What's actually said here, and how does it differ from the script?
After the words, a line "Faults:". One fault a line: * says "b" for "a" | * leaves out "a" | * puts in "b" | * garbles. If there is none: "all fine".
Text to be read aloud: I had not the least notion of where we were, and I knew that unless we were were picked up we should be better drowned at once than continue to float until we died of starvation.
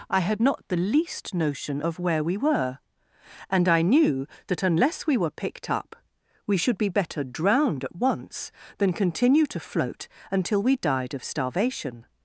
I had not the least notion of where we were, and I knew that unless we were picked up we should be better drowned at once than continue to float until we died of starvation.
Faults:
* leaves out "were"